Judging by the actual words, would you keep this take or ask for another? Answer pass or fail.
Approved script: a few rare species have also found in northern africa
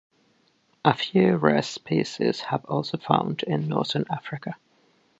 pass